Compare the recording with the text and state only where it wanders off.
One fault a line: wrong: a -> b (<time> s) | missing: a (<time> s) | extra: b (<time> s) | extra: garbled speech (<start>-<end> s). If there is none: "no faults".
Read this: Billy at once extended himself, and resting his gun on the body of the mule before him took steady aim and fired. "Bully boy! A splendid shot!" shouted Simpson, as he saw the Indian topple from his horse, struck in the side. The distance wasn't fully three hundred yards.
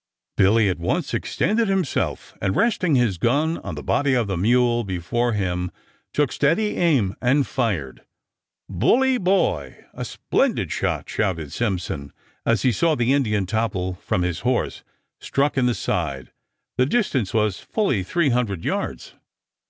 wrong: wasn't -> was (17.3 s)